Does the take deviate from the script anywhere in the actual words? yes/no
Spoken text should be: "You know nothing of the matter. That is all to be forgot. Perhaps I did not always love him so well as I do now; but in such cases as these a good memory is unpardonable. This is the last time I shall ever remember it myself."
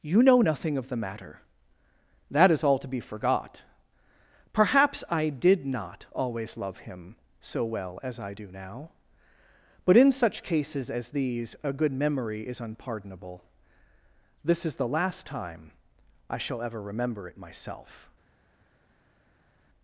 no